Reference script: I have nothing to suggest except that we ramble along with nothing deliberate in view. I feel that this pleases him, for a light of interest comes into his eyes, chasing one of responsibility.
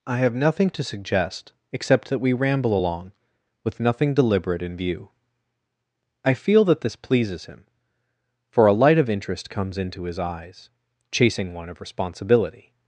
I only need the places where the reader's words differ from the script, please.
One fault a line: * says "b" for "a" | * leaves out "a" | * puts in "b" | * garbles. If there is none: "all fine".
all fine